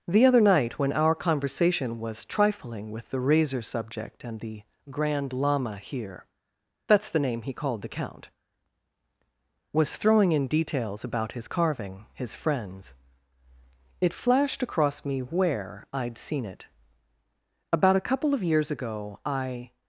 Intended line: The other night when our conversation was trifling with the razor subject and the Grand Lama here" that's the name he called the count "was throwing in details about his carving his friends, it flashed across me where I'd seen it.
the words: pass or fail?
fail